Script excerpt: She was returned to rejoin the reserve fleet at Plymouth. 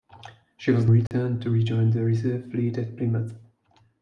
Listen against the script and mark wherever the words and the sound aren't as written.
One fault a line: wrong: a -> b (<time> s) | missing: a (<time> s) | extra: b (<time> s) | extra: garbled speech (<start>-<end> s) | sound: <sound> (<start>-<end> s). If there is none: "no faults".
sound: dropout (1.1-1.1 s)